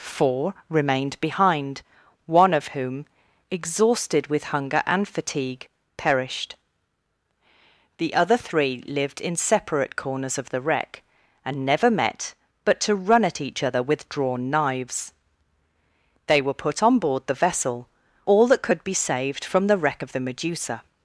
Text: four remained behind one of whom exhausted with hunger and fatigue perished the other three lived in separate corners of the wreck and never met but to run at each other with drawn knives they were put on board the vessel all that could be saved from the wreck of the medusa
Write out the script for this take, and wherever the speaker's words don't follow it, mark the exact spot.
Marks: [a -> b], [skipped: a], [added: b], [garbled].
four remained behind one of whom exhausted with hunger and fatigue perished the other three lived in separate corners of the wreck and never met but to run at each other with drawn knives they were put on board the vessel all that could be saved from the wreck of the medusa